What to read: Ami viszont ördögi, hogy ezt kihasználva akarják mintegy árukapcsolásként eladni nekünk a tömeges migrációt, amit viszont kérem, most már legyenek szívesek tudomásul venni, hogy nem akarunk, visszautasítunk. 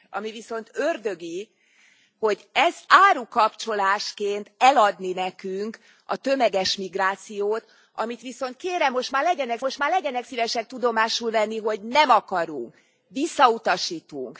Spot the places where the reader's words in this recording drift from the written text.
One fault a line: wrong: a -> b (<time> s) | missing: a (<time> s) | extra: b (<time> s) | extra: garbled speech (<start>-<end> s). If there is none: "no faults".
missing: kihasználva akarják mintegy (2.9 s)
extra: most már legyenek (9.6 s)